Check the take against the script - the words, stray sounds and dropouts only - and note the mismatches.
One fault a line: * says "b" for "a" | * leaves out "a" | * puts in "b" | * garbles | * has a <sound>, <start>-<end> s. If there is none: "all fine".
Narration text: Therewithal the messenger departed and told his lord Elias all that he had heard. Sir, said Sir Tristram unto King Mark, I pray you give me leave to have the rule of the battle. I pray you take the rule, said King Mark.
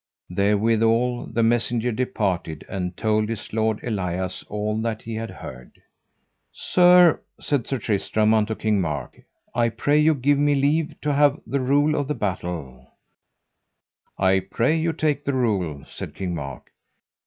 all fine